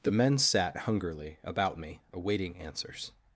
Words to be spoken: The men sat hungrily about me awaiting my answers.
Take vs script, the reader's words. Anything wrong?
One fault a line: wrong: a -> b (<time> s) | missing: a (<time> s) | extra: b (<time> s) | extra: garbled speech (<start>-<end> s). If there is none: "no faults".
missing: my (2.6 s)